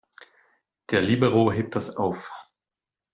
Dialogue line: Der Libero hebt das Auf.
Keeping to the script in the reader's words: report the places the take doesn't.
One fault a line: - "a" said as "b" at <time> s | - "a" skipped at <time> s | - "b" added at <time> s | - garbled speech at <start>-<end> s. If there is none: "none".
none